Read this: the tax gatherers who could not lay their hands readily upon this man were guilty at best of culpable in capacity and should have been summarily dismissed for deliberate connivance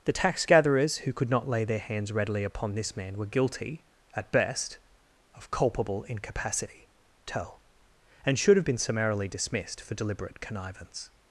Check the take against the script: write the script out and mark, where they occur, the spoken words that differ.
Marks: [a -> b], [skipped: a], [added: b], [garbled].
the tax gatherers who could not lay their hands readily upon this man were guilty at best of culpable [in capacity -> incapacity tell] and should have been summarily dismissed for deliberate connivance